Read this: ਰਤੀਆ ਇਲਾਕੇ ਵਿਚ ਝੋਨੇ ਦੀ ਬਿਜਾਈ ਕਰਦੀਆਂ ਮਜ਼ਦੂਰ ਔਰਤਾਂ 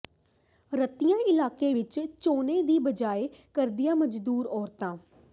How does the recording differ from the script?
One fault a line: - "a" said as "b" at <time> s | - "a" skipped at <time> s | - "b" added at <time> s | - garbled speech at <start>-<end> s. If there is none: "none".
none